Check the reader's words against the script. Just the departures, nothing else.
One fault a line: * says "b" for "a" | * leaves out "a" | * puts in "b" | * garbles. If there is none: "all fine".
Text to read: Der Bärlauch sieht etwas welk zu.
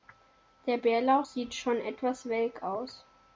* puts in "schon"
* says "aus" for "zu"